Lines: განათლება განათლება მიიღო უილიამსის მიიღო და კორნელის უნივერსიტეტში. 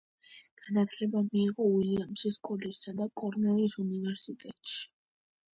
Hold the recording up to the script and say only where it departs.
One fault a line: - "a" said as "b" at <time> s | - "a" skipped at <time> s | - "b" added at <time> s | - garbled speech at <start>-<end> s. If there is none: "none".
- "განათლება" skipped at 1.2 s
- "მიიღო" said as "კოლეჯსა" at 2.5 s